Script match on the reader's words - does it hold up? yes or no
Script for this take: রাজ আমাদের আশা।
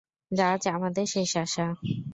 no